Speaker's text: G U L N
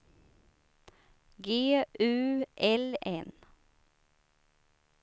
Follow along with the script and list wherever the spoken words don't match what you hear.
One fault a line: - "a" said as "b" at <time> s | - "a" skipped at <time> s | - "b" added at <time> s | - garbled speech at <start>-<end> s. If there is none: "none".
none